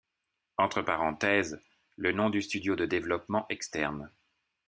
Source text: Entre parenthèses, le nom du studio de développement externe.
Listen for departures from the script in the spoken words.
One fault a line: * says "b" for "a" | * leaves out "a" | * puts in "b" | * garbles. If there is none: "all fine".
all fine